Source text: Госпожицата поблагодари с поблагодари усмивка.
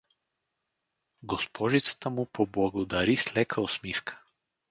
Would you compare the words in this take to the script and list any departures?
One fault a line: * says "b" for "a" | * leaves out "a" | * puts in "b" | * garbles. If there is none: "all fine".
* puts in "му"
* says "лека" for "поблагодари"